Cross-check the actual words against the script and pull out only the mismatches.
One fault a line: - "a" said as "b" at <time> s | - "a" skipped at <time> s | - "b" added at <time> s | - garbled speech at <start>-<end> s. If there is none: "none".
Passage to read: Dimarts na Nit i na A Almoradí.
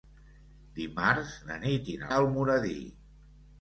none